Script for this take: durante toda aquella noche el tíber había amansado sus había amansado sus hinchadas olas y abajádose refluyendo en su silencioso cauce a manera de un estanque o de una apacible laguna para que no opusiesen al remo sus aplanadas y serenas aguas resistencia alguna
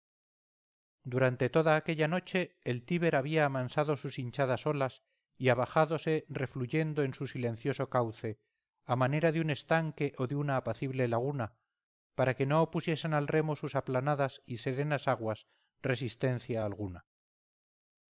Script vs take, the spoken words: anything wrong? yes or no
yes